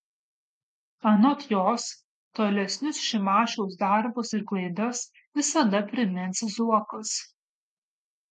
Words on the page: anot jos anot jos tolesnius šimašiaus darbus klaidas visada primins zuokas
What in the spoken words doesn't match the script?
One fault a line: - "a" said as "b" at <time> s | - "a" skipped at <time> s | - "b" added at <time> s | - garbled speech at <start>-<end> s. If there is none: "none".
- "anot jos" skipped at 1.8 s
- "ir" added at 4.4 s